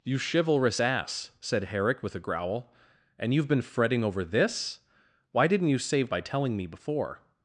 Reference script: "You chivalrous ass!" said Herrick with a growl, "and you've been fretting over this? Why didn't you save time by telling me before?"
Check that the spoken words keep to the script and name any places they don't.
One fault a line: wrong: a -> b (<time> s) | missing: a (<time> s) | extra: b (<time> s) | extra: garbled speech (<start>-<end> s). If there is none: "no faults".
missing: time (6.1 s)